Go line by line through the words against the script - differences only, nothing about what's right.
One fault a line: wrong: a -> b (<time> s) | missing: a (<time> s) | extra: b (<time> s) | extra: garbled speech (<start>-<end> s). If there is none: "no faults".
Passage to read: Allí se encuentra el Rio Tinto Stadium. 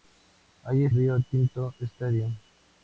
missing: se encuentra el (0.9 s)